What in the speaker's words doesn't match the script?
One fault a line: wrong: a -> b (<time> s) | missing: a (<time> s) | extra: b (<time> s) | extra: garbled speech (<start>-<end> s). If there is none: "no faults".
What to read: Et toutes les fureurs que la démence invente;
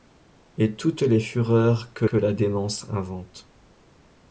extra: que (2.0 s)